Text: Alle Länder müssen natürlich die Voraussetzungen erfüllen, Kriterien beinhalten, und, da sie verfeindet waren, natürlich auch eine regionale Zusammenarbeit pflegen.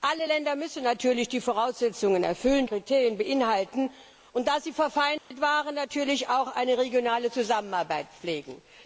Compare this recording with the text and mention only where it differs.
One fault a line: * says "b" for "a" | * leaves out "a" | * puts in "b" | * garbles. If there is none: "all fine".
all fine